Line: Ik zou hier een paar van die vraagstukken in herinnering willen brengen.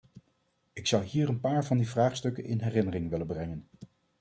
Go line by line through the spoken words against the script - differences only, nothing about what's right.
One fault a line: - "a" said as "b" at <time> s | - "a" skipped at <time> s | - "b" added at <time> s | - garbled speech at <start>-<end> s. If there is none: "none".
none